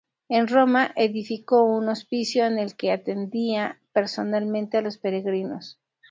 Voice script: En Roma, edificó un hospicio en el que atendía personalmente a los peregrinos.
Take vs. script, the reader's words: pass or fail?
pass